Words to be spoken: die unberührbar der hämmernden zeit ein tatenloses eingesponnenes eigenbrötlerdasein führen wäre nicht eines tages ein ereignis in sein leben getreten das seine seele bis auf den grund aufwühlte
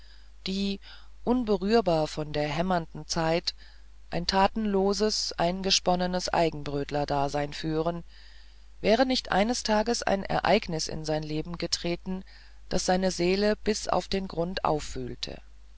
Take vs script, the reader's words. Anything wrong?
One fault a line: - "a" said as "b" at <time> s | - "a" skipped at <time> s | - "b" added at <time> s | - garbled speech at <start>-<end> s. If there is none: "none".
- "von" added at 2.1 s